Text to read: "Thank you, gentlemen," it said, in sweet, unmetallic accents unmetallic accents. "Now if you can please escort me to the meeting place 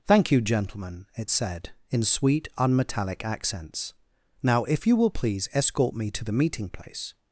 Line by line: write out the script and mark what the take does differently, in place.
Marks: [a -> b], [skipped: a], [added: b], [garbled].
"Thank you, gentlemen," it said, in sweet, unmetallic accents [skipped: unmetallic accents.] "Now if you [can -> will] please escort me to the meeting place